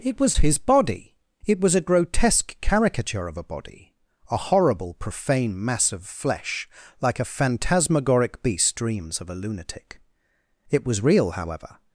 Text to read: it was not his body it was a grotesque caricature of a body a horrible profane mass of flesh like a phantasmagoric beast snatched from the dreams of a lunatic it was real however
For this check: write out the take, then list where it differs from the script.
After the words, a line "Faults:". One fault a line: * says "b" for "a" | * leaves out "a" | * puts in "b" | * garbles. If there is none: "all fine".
it was his body it was a grotesque caricature of a body a horrible profane mass of flesh like a phantasmagoric beast dreams of a lunatic it was real however
Faults:
* leaves out "not"
* leaves out "snatched from the"